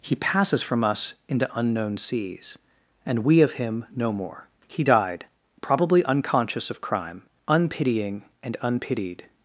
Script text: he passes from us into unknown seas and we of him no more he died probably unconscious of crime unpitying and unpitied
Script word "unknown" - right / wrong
right